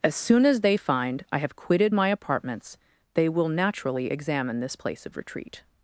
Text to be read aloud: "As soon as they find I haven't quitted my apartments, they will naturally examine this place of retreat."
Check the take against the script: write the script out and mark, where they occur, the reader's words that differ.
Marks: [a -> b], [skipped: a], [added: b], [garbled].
"As soon as they find I [haven't -> have] quitted my apartments, they will naturally examine this place of retreat."